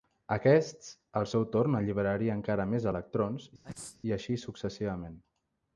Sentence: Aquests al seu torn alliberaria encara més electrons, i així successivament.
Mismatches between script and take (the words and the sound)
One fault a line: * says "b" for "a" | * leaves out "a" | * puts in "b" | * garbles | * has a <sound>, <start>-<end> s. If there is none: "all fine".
* has a sneeze, 3.6-4.0 s